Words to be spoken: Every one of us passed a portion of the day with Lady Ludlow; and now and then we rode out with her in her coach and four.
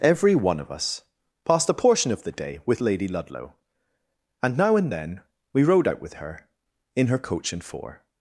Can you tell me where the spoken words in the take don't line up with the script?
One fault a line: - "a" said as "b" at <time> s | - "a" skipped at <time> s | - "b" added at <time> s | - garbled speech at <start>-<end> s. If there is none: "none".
none